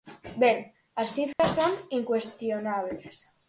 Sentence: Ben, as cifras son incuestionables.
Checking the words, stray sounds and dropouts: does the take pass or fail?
fail